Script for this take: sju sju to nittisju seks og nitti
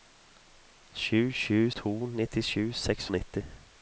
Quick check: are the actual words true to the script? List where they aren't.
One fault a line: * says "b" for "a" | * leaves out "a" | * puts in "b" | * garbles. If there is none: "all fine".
all fine